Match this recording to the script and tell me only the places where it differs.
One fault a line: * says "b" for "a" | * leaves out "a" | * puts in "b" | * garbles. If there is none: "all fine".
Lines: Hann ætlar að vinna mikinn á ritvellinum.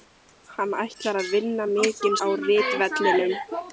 all fine